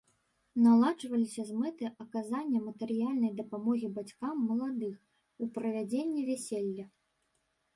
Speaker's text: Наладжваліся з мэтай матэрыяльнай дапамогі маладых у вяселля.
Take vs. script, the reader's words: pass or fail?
fail